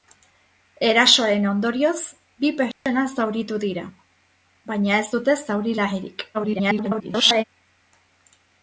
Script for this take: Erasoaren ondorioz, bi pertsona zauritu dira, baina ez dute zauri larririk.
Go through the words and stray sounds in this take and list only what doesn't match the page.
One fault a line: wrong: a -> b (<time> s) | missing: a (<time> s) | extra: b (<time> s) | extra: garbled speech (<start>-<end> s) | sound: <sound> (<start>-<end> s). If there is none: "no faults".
sound: dropout (2.7-2.9 s)
extra: garbled speech (6.3-7.4 s)